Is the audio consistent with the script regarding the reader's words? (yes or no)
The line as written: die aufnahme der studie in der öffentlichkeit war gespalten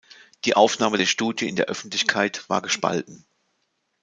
yes